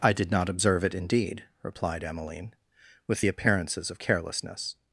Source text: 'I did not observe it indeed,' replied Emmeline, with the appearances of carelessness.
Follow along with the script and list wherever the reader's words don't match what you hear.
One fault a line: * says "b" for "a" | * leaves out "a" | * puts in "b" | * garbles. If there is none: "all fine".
all fine